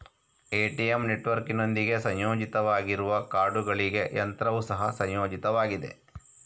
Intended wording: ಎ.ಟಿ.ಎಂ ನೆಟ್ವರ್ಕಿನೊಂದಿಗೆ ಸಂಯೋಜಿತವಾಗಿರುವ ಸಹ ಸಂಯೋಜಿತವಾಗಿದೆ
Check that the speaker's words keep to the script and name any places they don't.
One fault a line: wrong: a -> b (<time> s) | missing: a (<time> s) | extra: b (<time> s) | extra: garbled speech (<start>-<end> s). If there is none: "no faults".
extra: ಕಾರ್ಡುಗಳಿಗೆ ಯಂತ್ರವು (3.3 s)